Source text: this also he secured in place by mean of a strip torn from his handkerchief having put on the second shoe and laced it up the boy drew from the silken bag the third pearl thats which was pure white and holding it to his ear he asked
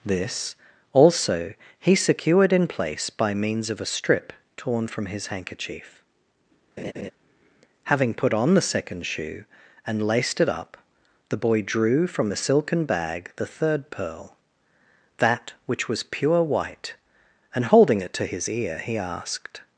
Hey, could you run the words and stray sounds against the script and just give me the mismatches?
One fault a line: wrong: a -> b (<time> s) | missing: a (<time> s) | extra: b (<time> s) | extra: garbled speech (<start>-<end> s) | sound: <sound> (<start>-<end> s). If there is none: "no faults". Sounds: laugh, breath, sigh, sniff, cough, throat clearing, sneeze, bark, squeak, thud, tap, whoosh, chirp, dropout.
wrong: mean -> means (3.3 s)
sound: laugh (6.8-7.1 s)
wrong: thats -> that (15.2 s)